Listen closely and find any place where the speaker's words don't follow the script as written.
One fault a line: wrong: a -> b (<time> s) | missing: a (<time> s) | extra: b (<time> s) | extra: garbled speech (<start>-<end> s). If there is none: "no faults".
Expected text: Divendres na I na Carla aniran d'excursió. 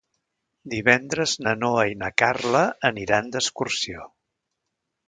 extra: Noa (1.6 s)